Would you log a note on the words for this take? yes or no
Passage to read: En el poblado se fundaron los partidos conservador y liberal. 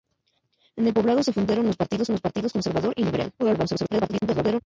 yes